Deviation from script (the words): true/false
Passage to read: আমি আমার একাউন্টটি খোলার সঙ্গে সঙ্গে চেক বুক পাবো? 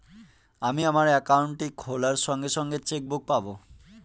false